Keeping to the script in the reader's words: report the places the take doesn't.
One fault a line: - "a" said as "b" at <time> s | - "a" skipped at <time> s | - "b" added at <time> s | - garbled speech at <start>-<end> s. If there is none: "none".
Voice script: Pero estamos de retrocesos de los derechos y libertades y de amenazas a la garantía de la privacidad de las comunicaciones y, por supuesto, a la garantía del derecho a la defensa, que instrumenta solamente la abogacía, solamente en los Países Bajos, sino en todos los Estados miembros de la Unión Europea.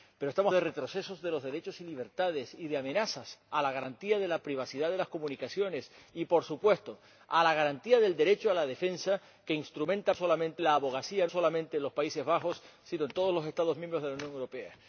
none